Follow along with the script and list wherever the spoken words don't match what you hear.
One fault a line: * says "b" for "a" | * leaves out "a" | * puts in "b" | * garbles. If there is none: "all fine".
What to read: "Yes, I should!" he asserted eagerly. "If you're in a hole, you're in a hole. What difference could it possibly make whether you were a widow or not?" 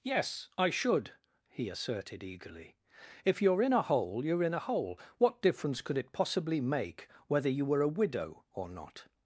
all fine